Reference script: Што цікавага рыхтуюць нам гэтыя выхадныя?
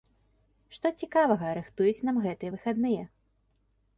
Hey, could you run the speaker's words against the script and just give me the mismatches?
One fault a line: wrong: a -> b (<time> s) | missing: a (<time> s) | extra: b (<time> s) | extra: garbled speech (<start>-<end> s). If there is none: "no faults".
no faults